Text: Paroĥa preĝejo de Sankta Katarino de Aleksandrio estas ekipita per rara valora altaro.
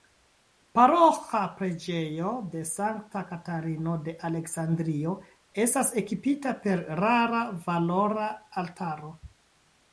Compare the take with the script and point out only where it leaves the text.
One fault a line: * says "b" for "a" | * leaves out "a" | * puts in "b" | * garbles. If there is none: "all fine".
all fine